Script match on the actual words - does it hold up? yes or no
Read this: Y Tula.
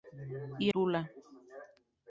yes